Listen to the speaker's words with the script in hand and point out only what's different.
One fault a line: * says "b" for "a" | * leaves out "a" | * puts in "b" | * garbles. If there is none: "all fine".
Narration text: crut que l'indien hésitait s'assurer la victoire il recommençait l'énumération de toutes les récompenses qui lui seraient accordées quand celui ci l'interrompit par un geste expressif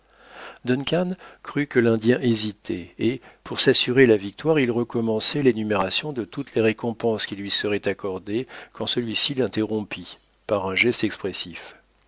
* puts in "et pour"